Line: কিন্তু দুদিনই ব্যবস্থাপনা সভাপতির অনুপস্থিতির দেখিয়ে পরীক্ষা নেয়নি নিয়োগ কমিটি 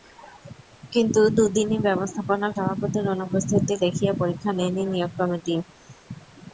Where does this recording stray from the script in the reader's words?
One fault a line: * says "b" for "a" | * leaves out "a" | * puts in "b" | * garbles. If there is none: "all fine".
all fine